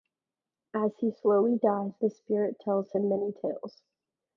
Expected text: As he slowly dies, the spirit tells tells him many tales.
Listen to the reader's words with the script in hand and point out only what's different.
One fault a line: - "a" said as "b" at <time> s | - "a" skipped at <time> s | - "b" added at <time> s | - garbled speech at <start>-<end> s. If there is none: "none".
- "tells" skipped at 2.9 s